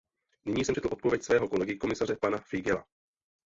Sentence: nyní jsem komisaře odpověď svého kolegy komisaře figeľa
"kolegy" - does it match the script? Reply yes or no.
yes